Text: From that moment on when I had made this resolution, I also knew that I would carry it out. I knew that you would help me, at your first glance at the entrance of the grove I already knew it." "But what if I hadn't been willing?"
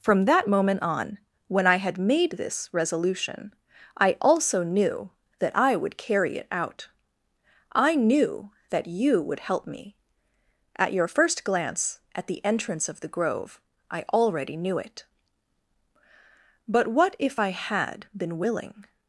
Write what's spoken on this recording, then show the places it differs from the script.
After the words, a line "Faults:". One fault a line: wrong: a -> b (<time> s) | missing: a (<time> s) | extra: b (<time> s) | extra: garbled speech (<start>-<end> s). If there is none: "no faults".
From that moment on when I had made this resolution, I also knew that I would carry it out. I knew that you would help me, at your first glance at the entrance of the grove I already knew it." "But what if I had been willing?"
Faults:
wrong: hadn't -> had (17.5 s)